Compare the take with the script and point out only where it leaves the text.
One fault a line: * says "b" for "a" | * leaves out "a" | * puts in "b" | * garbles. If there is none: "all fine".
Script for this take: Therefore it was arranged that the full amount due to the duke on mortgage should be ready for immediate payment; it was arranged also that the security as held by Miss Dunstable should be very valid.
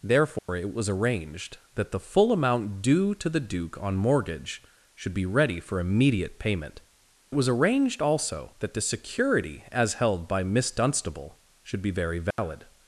all fine